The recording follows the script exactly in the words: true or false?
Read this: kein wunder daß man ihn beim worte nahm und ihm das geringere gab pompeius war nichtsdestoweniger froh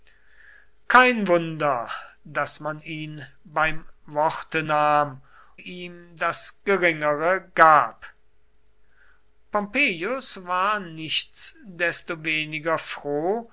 false